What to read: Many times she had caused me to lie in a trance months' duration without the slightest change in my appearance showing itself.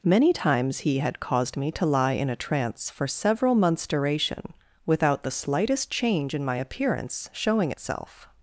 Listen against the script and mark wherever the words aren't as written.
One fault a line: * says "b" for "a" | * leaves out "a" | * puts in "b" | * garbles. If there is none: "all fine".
* says "he" for "she"
* puts in "for several"